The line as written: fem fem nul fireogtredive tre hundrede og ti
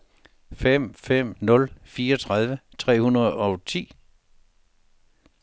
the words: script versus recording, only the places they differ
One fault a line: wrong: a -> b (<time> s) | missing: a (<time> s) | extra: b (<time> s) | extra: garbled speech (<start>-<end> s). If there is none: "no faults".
no faults